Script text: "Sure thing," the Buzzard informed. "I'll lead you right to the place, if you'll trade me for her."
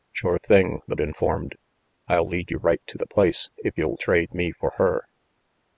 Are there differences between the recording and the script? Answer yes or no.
yes